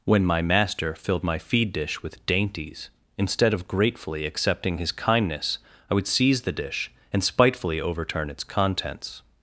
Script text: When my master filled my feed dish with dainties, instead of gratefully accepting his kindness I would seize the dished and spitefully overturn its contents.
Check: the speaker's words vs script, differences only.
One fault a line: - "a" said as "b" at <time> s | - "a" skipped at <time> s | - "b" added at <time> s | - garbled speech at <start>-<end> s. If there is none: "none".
- "dished" said as "dish" at 6.5 s